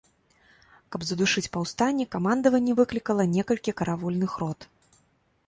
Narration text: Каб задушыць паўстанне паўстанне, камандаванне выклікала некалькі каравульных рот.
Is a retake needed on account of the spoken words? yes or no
yes